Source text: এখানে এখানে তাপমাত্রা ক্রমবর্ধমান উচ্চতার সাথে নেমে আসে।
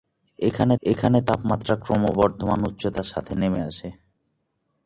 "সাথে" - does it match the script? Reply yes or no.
yes